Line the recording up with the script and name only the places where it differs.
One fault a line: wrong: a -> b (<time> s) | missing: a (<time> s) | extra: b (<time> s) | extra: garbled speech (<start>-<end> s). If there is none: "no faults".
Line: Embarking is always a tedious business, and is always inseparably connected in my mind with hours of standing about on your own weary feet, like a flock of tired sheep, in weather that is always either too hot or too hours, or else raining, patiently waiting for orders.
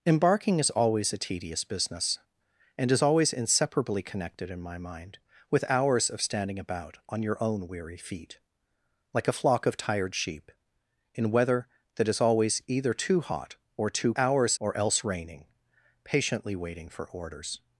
no faults